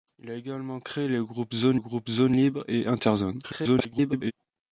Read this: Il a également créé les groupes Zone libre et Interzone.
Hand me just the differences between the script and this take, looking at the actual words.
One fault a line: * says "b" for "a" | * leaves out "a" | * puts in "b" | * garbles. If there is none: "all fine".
* puts in "groupes Zone"
* garbles